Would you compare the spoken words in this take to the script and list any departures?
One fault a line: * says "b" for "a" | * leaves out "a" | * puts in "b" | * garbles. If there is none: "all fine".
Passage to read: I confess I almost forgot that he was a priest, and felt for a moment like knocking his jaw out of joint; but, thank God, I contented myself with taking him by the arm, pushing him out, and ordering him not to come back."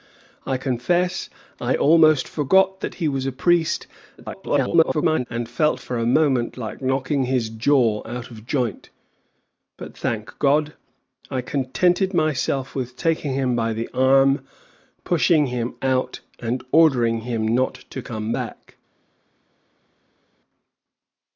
* garbles